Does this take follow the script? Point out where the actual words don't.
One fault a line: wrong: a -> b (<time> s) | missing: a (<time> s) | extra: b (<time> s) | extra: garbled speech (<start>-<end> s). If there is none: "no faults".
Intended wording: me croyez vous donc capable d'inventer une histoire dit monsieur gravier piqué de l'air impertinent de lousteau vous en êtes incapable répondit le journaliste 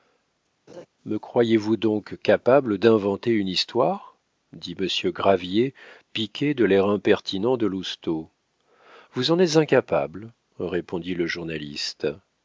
no faults